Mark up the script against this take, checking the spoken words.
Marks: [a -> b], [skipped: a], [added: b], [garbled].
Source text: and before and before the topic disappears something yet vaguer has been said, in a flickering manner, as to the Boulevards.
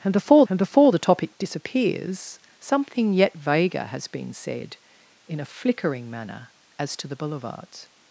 and before and before the topic disappears something yet vaguer has been said, in a flickering manner, as to the Boulevards.